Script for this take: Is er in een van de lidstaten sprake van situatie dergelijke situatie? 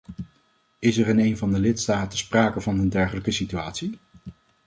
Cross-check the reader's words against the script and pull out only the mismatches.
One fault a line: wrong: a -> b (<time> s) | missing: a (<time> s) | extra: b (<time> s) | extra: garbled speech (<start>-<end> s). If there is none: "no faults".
wrong: situatie -> een (2.8 s)